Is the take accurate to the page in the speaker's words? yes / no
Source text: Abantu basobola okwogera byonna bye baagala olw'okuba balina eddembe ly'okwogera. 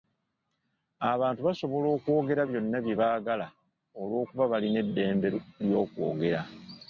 yes